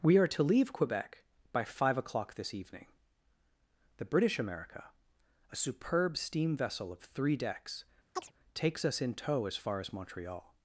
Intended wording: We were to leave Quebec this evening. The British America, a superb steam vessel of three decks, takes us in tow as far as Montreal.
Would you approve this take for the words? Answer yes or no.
no